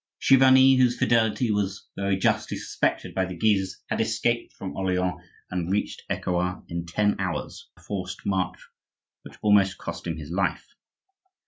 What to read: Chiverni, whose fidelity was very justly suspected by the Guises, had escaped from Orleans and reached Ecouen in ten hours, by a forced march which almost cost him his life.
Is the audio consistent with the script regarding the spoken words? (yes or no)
no